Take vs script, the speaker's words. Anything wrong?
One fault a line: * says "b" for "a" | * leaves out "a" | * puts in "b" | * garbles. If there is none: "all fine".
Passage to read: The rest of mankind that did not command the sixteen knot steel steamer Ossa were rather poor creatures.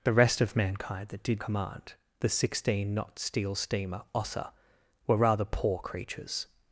* leaves out "not"